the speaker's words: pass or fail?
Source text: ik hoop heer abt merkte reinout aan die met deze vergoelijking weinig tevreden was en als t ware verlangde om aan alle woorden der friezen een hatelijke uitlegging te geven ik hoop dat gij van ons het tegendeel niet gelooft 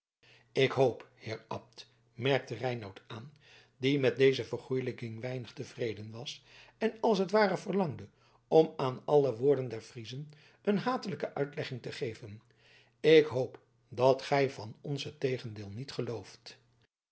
pass